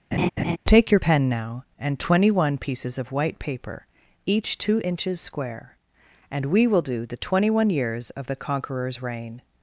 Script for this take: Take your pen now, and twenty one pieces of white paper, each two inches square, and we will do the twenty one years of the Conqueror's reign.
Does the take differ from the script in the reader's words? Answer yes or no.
no